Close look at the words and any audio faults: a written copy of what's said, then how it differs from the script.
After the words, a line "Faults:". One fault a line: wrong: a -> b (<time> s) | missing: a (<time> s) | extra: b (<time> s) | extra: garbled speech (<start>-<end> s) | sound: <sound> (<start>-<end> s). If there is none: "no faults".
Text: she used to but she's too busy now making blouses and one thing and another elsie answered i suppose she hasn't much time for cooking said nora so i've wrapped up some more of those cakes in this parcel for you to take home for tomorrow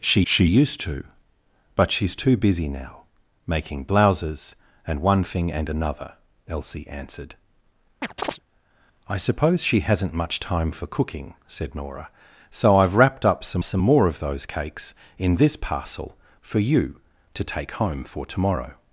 she she used to but she's too busy now making blouses and one thing and another elsie answered i suppose she hasn't much time for cooking said nora so i've wrapped up some some more of those cakes in this parcel for you to take home for tomorrow
Faults:
extra: she (0.3 s)
sound: chirp (8.0-8.4 s)
extra: some (13.6 s)